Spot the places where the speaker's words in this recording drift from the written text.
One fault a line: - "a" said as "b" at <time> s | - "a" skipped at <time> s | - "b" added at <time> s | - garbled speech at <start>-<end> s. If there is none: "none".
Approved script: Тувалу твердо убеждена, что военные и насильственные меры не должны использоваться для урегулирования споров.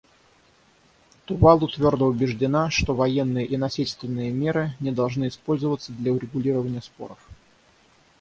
none